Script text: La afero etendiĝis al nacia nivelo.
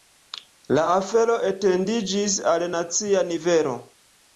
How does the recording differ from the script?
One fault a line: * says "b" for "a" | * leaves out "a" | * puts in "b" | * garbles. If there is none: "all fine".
all fine